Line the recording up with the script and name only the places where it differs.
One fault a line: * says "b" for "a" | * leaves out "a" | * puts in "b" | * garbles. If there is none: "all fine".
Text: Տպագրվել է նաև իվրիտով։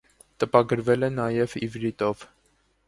all fine